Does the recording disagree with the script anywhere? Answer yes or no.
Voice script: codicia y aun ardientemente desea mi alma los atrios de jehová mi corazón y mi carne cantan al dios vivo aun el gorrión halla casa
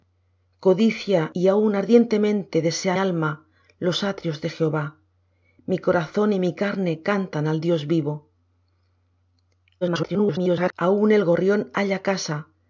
yes